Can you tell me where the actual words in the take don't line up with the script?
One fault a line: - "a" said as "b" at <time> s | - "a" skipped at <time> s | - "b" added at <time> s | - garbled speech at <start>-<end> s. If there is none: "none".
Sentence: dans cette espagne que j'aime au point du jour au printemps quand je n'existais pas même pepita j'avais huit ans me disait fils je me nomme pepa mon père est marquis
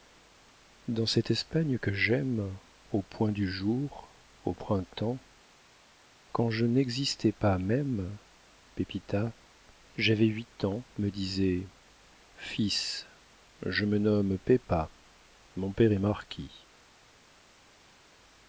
none